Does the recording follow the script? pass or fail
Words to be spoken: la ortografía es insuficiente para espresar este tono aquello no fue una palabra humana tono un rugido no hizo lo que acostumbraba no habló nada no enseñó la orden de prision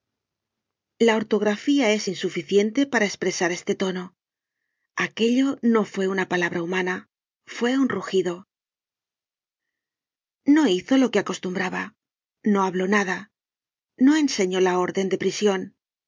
fail